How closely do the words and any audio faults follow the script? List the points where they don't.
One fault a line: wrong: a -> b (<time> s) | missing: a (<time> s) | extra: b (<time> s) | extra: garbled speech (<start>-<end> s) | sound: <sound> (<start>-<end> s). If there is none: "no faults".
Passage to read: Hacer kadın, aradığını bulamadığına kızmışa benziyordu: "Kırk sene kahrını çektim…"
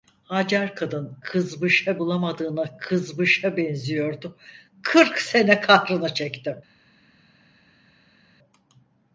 wrong: aradığını -> kızmışa (1.2 s)